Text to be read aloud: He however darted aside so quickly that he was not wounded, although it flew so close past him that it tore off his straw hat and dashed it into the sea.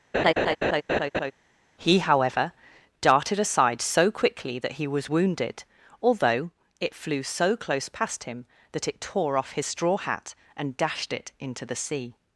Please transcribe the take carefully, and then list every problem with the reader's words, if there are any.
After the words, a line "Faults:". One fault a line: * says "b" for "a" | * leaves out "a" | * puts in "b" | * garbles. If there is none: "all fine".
He however darted aside so quickly that he was wounded, although it flew so close past him that it tore off his straw hat and dashed it into the sea.
Faults:
* leaves out "not"